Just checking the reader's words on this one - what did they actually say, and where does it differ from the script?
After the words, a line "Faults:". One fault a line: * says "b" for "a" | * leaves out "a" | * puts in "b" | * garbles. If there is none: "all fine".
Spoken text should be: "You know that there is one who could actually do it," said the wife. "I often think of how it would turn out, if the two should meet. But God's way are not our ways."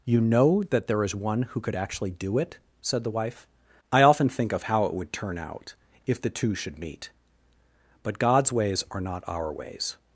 "You know that there is one who could actually do it," said the wife. "I often think of how it would turn out, if the two should meet. But God's ways are not our ways."
Faults:
* says "ways" for "way"